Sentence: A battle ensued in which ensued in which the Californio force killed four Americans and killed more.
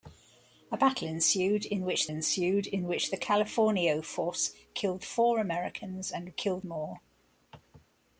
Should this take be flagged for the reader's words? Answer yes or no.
no